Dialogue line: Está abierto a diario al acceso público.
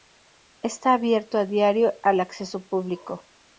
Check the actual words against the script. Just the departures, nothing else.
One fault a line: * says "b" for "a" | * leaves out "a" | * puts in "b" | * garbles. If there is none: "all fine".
all fine